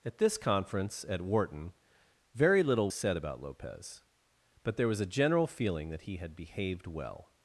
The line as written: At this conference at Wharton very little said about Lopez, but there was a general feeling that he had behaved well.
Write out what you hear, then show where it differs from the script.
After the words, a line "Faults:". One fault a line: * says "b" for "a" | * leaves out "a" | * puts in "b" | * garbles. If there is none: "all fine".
At this conference at Wharton very little said about Lopez, but there was a general feeling that he had behaved well.
Faults:
all fine